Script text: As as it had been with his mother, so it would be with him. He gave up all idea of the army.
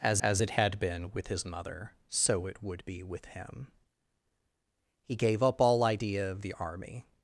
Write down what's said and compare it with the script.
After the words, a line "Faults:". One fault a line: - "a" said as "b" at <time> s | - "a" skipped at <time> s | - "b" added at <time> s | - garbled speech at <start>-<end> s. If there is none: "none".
As as it had been with his mother, so it would be with him. He gave up all idea of the army.
Faults:
none